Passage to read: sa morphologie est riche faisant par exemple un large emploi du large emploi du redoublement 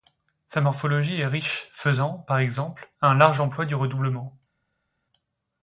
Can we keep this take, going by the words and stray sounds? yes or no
no